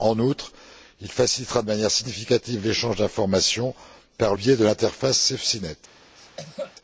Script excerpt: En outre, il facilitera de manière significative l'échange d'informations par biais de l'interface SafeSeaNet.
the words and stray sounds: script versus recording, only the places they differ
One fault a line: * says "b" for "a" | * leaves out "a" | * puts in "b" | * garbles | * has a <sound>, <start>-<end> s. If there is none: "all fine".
* has a cough, 6.2-6.8 s